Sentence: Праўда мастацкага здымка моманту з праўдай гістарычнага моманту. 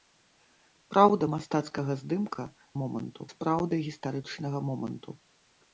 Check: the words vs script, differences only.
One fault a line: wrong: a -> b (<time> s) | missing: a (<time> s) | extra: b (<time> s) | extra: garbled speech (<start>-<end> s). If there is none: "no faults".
no faults